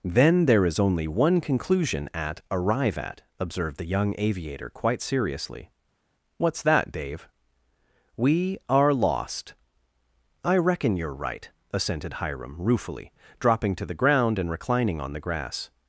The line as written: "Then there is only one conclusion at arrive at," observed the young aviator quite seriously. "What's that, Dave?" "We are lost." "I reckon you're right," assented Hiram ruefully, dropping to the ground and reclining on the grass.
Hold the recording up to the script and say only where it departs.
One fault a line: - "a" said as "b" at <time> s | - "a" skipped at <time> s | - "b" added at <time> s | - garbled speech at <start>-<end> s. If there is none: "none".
none